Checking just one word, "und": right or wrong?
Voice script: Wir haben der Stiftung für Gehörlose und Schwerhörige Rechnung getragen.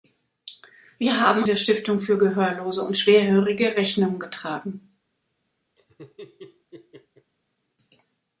right